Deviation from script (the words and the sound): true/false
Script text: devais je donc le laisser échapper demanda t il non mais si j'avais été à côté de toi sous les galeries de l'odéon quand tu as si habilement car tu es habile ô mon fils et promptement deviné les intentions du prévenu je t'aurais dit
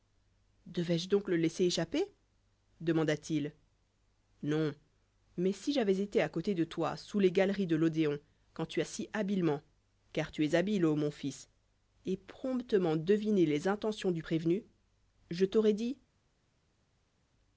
false